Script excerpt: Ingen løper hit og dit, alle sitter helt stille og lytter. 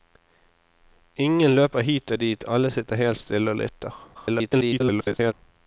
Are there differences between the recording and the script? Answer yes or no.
yes